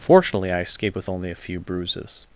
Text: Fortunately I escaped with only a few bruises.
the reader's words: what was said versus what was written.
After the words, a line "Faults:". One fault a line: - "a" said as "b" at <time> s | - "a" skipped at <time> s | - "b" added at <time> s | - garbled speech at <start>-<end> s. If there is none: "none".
Fortunately I escaped with only a few bruises.
Faults:
none